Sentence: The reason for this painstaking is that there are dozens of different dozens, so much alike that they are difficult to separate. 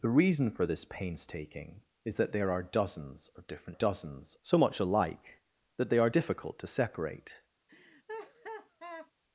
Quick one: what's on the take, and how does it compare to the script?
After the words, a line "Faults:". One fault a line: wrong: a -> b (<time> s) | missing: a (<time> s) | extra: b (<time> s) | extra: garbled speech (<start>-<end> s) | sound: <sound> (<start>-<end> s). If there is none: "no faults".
The reason for this painstaking is that there are dozens of different dozens, so much alike that they are difficult to separate.
Faults:
sound: laugh (7.7-9.1 s)